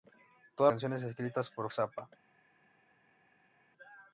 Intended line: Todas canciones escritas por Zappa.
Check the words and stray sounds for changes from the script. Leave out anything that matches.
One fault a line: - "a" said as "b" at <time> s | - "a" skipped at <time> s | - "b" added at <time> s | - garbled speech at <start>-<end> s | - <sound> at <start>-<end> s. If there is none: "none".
none